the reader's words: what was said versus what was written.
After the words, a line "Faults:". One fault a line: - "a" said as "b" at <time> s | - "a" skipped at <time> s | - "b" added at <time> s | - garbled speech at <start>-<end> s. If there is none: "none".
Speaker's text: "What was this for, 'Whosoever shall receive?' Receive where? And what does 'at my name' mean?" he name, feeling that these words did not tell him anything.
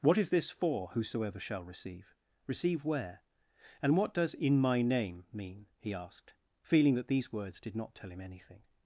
"What is this for, 'Whosoever shall receive?' Receive where? And what does 'in my name' mean?" he asked, feeling that these words did not tell him anything.
Faults:
- "was" said as "is" at 0.2 s
- "at" said as "in" at 4.3 s
- "name" said as "asked" at 5.9 s